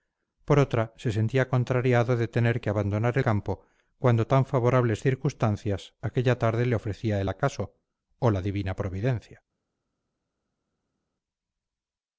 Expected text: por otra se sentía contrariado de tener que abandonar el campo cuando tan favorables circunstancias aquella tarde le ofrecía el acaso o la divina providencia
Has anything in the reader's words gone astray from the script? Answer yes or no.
yes